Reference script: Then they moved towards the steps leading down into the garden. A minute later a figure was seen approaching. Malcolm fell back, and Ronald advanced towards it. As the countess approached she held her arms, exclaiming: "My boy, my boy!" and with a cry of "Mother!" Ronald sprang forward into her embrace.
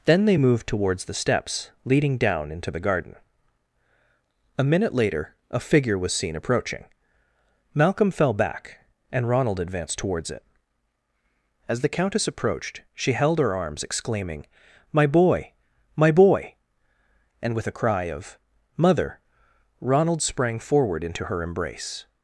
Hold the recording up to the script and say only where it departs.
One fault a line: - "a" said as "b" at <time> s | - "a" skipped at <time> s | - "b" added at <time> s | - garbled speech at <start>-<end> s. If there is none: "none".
none